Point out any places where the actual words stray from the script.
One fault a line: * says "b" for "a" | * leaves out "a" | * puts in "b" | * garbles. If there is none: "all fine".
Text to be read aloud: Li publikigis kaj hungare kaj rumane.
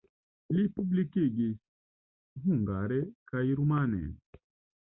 * leaves out "kaj"